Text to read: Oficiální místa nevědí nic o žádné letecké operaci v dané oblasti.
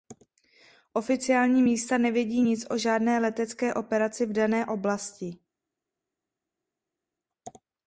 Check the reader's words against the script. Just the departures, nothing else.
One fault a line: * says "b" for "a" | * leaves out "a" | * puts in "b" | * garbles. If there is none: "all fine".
all fine